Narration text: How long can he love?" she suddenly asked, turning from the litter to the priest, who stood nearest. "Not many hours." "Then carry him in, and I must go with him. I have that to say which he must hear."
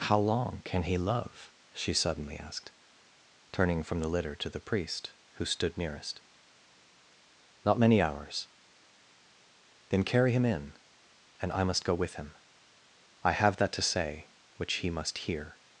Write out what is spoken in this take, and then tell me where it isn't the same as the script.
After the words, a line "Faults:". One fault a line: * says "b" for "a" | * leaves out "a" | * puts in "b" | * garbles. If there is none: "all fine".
How long can he love?" she suddenly asked, turning from the litter to the priest, who stood nearest. "Not many hours." "Then carry him in, and I must go with him. I have that to say which he must hear."
Faults:
all fine